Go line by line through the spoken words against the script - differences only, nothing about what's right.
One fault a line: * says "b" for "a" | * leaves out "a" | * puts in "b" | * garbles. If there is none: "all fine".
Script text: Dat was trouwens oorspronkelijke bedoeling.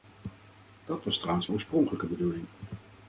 all fine